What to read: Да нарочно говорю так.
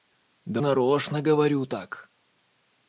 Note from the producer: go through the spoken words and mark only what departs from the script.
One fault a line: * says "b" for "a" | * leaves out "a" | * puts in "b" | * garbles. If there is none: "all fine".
all fine